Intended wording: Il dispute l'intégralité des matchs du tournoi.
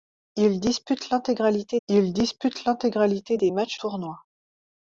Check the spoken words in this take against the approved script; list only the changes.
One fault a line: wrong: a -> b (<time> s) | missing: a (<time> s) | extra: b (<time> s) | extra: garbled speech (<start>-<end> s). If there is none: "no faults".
extra: il dispute l'intégralité (1.9 s)
missing: du (3.8 s)